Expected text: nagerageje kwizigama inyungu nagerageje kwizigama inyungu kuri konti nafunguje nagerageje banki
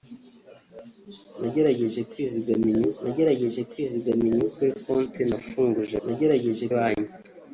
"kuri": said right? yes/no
yes